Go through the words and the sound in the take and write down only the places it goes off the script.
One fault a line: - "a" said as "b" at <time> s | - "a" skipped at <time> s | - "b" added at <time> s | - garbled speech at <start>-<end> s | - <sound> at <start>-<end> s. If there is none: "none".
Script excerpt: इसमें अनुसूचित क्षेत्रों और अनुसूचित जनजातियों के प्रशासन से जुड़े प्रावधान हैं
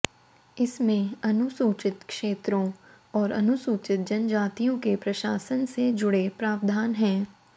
none